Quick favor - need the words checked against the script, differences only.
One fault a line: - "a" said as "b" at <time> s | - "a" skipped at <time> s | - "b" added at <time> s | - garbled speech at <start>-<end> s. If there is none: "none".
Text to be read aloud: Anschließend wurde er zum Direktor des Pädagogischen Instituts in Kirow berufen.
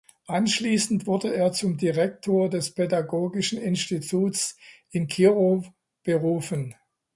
none